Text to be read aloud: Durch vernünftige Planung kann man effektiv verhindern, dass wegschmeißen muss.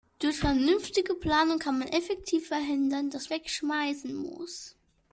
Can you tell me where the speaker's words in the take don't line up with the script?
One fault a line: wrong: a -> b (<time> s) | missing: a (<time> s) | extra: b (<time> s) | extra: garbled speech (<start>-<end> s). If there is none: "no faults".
no faults